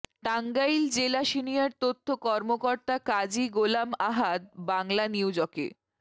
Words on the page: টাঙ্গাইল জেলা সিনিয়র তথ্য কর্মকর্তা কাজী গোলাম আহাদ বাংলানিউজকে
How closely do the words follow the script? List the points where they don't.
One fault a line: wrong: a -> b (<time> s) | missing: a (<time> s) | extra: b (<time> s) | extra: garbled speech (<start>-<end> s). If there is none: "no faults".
no faults